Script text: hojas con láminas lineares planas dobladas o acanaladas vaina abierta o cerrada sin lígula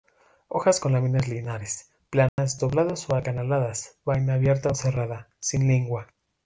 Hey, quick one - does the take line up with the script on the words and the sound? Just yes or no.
no